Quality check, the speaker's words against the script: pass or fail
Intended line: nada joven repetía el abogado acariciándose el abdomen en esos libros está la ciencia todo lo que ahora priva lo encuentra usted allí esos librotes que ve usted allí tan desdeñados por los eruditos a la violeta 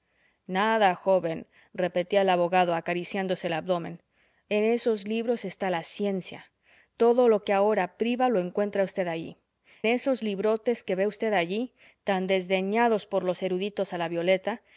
pass